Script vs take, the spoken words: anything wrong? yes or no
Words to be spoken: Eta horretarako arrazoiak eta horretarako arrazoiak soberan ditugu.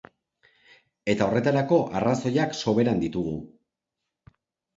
yes